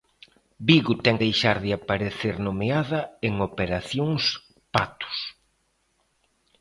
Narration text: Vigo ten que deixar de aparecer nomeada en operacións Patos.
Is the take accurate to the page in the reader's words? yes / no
no